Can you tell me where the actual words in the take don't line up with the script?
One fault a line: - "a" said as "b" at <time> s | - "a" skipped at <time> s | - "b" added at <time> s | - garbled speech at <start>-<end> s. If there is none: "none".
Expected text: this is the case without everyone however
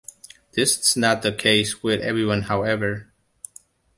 - "not" added at 1.0 s
- "without" said as "with" at 1.8 s